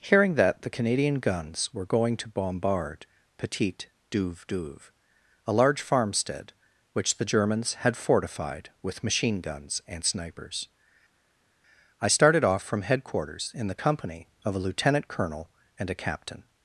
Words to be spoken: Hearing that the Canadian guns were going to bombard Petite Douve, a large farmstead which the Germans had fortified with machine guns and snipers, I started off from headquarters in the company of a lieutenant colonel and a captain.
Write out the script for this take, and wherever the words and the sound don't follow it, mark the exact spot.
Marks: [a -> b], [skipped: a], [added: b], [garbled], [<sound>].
Hearing that the Canadian guns were going to bombard Petite Douve, [added: Douve] a large farmstead which the Germans had fortified with machine guns and snipers, I started off from headquarters in the company of a lieutenant colonel and a captain.